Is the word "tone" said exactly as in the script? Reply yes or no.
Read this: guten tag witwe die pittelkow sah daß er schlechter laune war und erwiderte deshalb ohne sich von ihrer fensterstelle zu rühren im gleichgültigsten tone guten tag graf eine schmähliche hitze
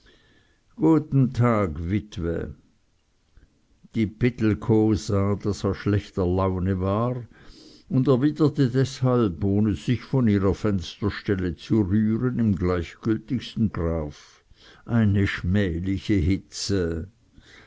no